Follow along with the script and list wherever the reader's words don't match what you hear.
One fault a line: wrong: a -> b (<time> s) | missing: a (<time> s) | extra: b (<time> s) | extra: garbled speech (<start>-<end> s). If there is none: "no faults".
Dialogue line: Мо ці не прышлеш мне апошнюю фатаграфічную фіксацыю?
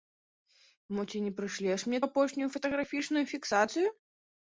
no faults